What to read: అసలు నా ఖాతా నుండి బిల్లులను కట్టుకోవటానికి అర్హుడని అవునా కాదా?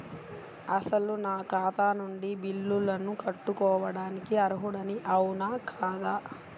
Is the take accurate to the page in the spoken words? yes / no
yes